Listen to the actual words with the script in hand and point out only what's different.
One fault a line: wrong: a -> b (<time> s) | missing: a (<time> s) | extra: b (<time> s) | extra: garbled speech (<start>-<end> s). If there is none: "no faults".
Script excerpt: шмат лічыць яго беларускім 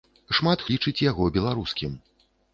no faults